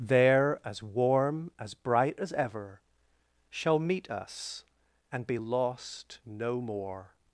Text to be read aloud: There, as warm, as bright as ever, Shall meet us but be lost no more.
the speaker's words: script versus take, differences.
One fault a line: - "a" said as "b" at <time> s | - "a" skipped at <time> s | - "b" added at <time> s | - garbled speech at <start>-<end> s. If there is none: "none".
- "but" said as "and" at 5.1 s